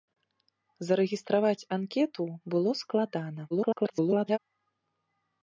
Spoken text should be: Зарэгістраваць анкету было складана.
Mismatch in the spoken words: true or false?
true